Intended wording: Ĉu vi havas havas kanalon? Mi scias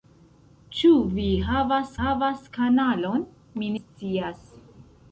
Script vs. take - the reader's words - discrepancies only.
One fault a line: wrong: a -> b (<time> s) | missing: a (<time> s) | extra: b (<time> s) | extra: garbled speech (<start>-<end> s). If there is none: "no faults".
no faults